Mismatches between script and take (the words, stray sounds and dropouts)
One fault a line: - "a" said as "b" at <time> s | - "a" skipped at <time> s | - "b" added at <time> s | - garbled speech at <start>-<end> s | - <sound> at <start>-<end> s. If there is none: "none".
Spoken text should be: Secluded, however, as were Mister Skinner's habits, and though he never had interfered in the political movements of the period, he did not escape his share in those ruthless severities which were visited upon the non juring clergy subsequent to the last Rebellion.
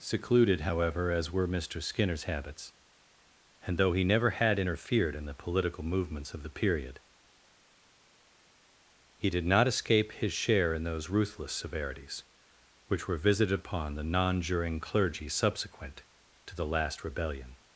none